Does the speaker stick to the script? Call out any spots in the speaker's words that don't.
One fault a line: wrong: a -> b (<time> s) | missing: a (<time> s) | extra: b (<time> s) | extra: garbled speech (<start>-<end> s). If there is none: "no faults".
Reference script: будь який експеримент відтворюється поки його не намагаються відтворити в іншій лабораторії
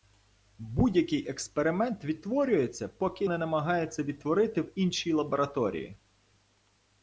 missing: його (3.2 s)